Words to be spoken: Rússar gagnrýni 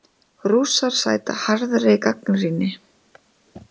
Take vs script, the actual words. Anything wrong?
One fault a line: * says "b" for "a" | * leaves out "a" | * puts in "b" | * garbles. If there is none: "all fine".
* puts in "sæta harðri"